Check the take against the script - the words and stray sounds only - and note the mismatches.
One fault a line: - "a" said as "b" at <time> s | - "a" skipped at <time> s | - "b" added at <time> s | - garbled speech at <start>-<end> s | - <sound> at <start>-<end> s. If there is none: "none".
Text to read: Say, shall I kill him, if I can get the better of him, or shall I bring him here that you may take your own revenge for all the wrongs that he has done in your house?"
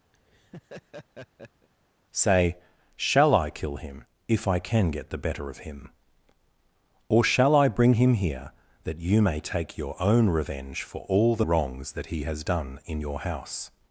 - laugh at 0.1-1.7 s